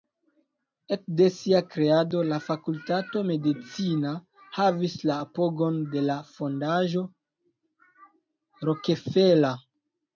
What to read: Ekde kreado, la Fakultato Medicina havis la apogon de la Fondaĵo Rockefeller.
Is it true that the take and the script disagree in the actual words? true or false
true